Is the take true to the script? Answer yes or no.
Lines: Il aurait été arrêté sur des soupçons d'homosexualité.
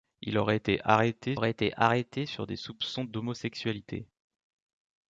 no